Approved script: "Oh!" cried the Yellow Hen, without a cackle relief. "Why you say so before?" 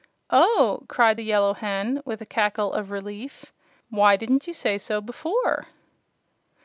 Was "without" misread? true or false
true